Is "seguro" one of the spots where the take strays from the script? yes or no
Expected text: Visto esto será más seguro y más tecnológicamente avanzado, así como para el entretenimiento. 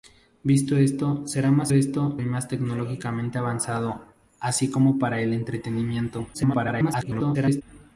yes